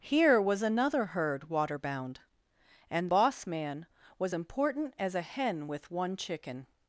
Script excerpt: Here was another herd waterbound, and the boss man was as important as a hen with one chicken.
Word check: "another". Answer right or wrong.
right